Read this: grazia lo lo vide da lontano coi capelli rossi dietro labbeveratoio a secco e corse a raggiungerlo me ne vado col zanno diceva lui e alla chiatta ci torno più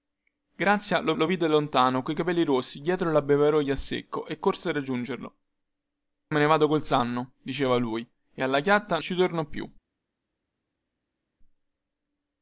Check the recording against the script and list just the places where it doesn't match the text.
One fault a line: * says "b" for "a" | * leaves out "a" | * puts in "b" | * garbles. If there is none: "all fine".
all fine